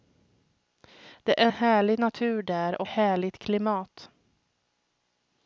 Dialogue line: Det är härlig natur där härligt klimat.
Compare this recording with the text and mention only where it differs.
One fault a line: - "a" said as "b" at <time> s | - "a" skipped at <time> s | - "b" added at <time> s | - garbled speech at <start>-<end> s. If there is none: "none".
none